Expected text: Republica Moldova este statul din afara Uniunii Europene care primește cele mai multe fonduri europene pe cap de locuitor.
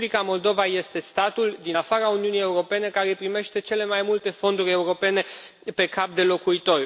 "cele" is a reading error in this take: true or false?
false